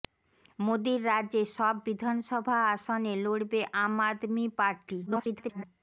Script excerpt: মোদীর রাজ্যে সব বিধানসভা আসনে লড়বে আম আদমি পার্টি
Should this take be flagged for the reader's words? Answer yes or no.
yes